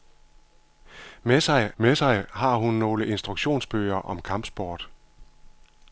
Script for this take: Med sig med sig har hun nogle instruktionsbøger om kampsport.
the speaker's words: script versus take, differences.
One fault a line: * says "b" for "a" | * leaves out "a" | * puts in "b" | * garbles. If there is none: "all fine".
all fine